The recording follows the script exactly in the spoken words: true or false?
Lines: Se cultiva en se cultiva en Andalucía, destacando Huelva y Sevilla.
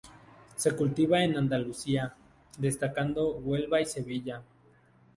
false